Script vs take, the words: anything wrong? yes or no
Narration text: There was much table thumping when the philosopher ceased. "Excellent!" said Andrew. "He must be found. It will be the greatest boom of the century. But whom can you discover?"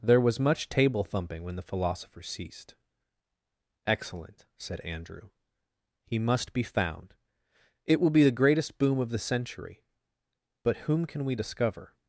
yes